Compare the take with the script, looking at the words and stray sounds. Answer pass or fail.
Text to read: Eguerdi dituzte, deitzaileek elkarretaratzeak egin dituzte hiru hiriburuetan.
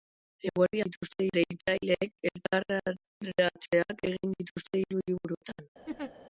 fail